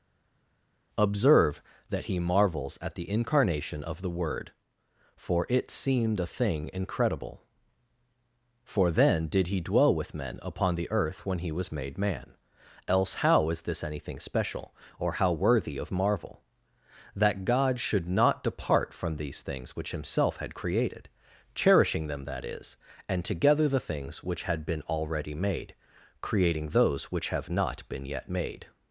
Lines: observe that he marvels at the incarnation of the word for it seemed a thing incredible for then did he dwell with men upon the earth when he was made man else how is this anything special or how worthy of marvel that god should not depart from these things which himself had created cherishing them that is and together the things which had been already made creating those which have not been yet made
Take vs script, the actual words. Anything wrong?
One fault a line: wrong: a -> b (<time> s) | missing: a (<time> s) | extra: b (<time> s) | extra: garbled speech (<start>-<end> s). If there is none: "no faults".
no faults